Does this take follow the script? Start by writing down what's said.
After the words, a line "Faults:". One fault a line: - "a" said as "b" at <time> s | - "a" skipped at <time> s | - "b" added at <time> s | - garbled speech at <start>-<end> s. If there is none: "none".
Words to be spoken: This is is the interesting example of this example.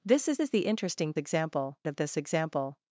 This is is the interesting example of this example.
Faults:
none